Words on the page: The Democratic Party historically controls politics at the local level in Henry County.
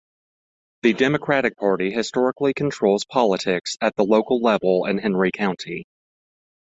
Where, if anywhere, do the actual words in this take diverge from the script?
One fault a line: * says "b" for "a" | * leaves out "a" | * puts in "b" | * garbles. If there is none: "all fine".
all fine